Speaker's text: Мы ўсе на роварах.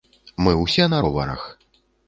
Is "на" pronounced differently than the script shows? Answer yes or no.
no